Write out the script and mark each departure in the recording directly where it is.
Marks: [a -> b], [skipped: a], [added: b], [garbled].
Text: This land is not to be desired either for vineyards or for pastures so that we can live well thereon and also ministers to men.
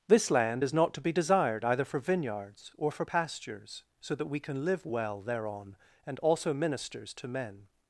This land is not to be desired either for vineyards or for pastures so that we can live well thereon and also ministers to men.